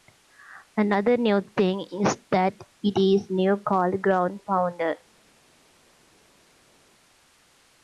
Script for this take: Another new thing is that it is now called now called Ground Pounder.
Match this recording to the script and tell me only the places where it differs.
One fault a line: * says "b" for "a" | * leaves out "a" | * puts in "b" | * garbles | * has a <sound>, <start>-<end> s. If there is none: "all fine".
* leaves out "now called"